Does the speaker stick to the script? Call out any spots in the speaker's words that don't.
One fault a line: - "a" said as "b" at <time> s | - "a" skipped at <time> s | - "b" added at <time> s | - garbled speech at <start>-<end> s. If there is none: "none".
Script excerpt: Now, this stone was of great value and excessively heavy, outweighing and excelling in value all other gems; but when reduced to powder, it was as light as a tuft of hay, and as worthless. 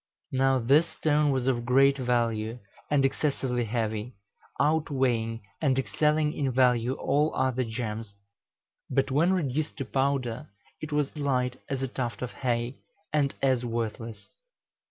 - "as" skipped at 11.1 s